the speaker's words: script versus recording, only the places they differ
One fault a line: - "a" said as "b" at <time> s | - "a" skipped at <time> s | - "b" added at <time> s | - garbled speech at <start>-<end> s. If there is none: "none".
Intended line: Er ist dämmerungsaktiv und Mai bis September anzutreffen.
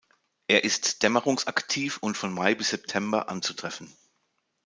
- "von" added at 2.2 s